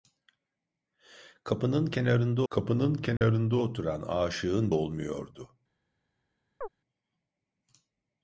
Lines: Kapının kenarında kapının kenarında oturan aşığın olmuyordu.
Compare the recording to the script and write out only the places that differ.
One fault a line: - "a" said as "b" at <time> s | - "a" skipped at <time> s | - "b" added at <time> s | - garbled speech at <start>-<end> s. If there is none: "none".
none